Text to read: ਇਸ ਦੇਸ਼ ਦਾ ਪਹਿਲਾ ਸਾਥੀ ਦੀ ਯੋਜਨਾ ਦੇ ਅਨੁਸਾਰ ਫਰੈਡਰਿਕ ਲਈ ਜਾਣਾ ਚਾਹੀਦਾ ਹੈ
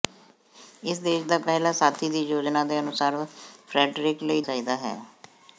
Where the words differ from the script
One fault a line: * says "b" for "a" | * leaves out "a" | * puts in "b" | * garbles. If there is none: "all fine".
* leaves out "ਜਾਣਾ"